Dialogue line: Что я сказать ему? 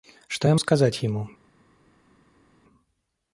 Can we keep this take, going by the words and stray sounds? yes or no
yes